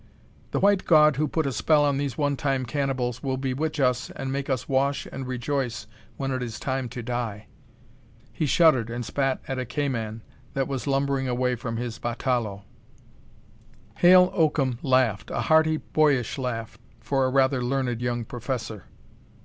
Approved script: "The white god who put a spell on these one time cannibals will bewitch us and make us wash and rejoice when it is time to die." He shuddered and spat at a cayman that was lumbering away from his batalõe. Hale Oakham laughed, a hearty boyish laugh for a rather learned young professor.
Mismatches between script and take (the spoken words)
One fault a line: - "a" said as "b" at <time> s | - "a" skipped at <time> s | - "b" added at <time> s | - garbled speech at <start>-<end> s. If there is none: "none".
none